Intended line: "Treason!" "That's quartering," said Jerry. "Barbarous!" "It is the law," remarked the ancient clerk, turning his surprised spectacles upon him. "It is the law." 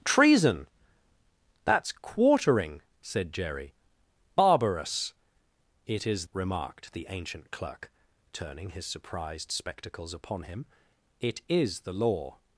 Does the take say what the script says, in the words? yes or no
no